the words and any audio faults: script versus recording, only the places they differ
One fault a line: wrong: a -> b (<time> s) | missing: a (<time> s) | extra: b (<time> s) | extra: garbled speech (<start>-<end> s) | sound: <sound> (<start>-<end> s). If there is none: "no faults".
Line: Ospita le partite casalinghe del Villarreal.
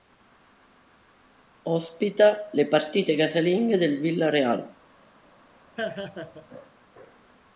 sound: laugh (5.8-6.5 s)